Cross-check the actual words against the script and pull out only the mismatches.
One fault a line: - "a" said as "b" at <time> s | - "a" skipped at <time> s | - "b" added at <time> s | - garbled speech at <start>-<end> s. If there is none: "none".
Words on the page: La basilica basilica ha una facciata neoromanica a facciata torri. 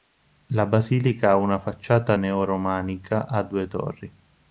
- "basilica" skipped at 1.3 s
- "facciata" said as "due" at 3.4 s